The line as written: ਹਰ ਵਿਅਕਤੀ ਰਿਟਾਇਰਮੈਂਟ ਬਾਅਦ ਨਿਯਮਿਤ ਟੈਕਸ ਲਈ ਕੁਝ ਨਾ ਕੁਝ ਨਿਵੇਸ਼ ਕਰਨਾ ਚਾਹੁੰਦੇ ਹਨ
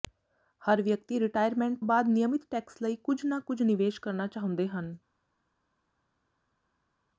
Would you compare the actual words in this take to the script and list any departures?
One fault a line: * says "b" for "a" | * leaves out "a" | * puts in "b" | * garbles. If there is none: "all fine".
all fine